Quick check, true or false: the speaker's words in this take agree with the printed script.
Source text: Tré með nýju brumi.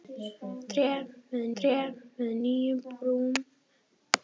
false